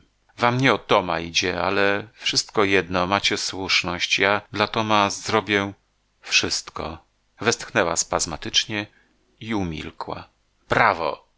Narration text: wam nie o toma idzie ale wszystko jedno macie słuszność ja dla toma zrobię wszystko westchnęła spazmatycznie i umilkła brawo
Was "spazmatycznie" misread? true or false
false